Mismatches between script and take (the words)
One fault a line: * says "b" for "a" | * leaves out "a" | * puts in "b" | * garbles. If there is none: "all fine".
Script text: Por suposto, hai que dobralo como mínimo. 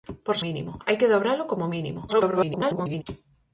* says "mínimo" for "suposto"
* garbles